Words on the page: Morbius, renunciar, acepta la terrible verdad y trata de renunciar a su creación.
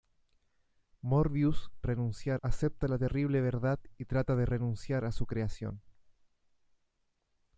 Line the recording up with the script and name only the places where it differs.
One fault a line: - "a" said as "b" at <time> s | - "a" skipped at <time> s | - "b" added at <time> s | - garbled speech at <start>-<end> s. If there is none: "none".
none